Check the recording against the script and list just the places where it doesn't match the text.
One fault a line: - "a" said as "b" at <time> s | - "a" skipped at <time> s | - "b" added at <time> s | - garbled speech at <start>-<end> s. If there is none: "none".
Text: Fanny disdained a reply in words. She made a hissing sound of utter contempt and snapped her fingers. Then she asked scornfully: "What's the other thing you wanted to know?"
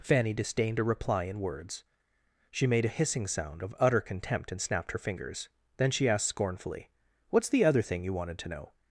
none